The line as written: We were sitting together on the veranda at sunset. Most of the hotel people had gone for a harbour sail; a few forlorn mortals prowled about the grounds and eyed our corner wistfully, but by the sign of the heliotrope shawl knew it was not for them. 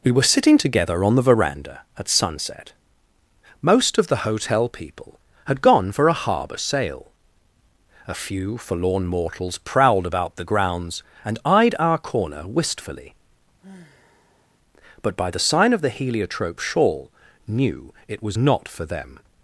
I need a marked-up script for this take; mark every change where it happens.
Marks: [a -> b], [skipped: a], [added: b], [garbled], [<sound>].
We were sitting together on the veranda at sunset. Most of the hotel people had gone for a harbour sail; a few forlorn mortals prowled about the grounds and eyed our corner wistfully, [sigh] but by the sign of the heliotrope shawl knew it was not for them.